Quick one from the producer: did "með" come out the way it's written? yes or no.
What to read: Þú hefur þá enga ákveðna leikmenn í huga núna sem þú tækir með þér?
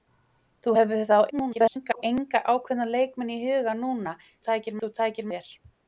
no